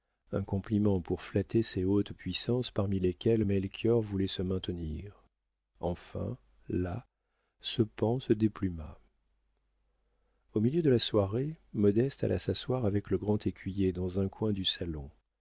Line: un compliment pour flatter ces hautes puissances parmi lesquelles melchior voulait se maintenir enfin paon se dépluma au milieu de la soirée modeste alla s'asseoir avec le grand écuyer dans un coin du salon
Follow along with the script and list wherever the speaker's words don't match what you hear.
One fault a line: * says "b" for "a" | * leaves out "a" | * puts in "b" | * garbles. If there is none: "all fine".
* puts in "là ce"